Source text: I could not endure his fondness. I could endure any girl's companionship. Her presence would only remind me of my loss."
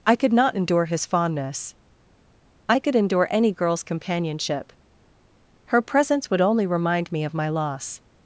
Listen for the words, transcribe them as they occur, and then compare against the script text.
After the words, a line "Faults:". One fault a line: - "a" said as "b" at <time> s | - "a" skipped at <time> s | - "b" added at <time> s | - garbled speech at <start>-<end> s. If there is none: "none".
I could not endure his fondness. I could endure any girl's companionship. Her presence would only remind me of my loss."
Faults:
none